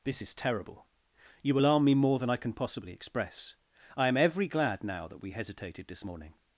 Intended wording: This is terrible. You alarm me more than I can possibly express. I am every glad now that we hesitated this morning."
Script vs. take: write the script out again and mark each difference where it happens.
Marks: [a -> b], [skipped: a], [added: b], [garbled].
This is terrible. You alarm me more than I can possibly express. I am every glad now that we hesitated this morning."